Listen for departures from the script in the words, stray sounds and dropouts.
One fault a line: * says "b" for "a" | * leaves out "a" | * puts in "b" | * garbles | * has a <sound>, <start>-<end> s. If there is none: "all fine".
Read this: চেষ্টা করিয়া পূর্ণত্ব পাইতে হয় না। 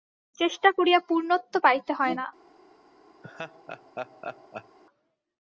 * has a laugh, 3.2-4.8 s